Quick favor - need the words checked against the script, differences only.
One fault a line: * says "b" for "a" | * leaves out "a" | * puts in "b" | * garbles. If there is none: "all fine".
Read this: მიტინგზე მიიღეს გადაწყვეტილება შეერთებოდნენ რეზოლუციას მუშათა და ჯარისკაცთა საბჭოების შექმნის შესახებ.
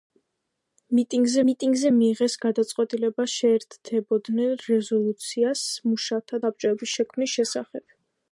* puts in "მიტინგზე"
* leaves out "და ჯარისკაცთა"